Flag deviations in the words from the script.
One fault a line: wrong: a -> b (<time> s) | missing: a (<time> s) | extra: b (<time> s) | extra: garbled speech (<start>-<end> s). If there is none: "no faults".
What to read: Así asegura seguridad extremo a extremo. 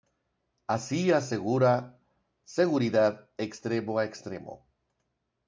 no faults